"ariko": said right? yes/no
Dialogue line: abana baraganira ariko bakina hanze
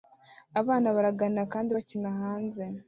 no